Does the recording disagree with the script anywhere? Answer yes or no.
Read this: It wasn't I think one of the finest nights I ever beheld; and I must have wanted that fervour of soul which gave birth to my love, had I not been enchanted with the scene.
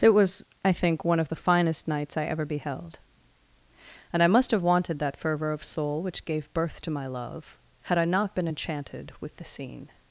yes